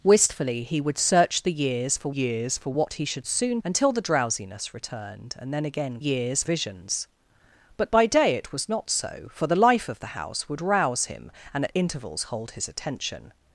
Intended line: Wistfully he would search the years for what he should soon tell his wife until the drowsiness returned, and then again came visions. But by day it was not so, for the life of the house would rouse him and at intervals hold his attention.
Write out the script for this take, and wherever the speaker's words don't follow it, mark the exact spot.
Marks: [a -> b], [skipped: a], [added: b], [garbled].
Wistfully he would search the years for [added: years for] what he should soon [skipped: tell his wife] until the drowsiness returned, and then again [came -> years] visions. But by day it was not so, for the life of the house would rouse him and at intervals hold his attention.